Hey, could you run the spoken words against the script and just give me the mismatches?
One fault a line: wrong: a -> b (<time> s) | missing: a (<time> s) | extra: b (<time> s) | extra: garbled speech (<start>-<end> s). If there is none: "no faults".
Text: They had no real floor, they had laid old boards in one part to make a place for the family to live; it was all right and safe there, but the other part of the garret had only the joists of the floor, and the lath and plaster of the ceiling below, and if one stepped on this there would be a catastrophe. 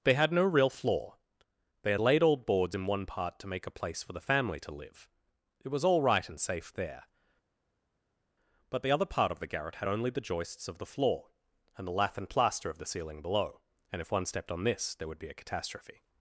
no faults